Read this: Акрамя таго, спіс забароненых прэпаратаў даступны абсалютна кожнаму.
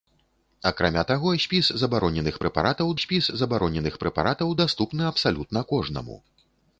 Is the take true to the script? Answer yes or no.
no